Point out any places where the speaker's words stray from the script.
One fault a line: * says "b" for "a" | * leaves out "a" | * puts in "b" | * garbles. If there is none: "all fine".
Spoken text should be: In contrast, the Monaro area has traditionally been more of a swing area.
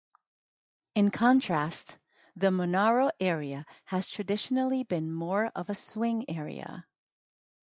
all fine